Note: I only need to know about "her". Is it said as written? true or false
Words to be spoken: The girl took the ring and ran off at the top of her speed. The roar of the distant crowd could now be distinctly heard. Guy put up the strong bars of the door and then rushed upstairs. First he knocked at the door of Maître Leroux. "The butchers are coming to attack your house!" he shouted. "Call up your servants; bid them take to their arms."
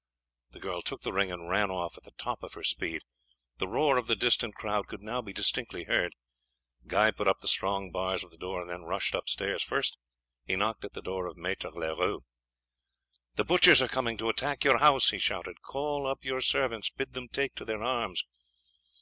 true